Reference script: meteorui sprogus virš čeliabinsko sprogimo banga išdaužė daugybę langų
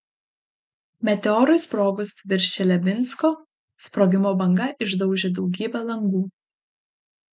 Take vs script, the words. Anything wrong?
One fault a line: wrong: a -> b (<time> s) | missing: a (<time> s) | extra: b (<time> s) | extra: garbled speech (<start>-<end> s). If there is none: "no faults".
no faults